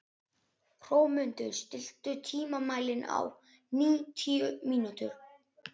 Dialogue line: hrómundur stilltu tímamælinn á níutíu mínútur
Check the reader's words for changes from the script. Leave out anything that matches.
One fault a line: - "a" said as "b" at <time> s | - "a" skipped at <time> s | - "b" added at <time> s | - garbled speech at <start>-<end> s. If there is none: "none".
none